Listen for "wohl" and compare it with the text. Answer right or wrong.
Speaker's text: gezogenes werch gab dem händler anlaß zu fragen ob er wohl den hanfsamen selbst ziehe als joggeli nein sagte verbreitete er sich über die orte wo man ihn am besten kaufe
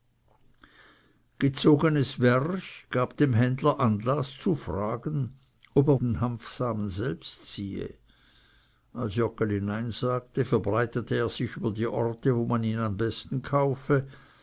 wrong